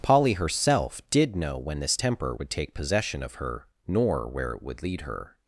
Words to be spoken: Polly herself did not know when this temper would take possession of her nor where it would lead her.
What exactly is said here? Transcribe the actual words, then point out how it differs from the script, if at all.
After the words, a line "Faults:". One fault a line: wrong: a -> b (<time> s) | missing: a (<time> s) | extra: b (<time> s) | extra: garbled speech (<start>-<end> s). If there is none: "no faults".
Polly herself did know when this temper would take possession of her nor where it would lead her.
Faults:
missing: not (1.3 s)